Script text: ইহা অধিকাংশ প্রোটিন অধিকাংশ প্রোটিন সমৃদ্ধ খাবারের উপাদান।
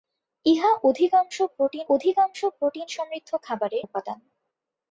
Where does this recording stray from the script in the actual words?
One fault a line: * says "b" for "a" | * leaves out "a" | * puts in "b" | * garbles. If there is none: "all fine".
all fine